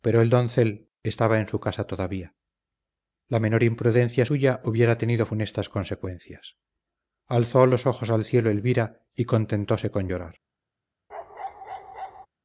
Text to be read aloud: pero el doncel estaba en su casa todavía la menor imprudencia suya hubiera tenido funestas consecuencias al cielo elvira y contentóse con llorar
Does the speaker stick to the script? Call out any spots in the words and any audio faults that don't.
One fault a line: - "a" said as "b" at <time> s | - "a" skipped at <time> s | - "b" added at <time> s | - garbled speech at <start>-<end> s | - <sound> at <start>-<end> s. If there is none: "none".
- "alzó los ojos" added at 7.3 s
- bark at 11.1-12.3 s